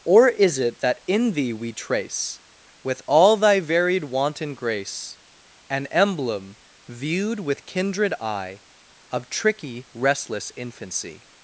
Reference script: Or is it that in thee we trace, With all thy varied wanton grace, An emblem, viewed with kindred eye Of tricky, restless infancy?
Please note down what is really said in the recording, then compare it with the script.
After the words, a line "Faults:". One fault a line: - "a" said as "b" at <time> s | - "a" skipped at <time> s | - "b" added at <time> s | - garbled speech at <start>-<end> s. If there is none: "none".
Or is it that in thee we trace, With all thy varied wanton grace, An emblem, viewed with kindred eye Of tricky, restless infancy?
Faults:
none